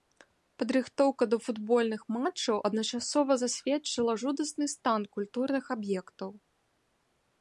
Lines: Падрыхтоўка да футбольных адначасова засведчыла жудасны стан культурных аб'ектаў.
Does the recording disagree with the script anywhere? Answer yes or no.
yes